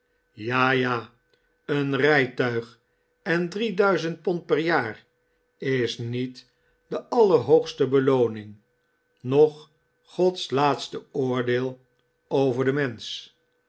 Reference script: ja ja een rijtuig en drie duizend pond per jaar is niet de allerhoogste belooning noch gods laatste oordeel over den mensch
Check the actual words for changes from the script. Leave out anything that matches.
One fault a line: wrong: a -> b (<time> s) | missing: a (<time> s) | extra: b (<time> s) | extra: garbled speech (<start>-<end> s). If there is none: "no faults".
no faults